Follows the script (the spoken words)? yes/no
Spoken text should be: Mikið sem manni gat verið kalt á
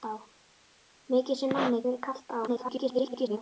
no